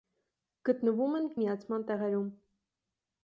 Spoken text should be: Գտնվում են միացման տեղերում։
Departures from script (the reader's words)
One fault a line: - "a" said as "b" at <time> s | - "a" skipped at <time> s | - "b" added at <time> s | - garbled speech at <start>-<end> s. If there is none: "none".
none